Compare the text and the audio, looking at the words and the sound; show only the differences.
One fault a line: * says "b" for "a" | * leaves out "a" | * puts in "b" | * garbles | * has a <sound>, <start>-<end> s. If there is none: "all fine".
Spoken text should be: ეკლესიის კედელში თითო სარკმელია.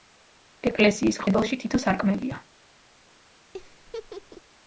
* has a laugh, 3.5-4.4 s